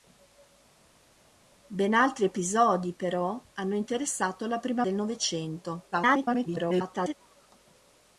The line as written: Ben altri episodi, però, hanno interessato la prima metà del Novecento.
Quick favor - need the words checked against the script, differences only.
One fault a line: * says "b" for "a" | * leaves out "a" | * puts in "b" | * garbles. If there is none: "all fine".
* leaves out "metà"
* garbles